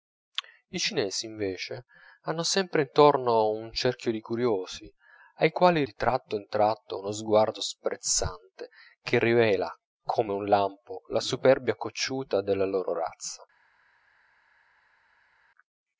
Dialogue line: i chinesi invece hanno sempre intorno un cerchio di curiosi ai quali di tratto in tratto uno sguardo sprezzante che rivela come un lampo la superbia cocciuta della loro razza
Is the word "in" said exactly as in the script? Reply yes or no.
yes